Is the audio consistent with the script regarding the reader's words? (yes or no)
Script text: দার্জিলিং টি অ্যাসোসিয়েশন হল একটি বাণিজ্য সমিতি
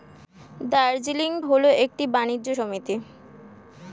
no